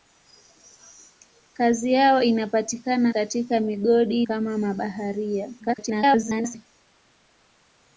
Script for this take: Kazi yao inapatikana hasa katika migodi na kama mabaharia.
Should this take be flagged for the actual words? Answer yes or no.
yes